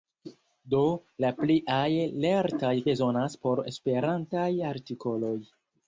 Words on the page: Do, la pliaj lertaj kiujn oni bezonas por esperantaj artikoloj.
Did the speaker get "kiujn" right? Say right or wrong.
wrong